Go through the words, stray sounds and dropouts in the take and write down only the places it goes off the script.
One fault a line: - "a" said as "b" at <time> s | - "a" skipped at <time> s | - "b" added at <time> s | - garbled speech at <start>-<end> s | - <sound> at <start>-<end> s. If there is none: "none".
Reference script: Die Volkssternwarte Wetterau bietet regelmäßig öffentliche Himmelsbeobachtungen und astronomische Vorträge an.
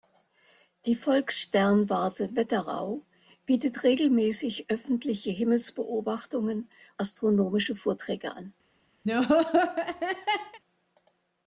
- "und" skipped at 6.7 s
- laugh at 9.0-10.6 s